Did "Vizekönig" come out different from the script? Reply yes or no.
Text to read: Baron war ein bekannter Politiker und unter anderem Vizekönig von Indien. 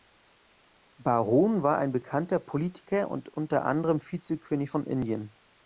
no